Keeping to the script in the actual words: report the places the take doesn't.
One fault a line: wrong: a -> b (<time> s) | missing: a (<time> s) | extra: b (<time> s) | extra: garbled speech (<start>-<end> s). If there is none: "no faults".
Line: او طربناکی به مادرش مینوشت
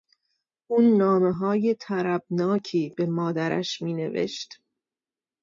extra: نامههای (0.8 s)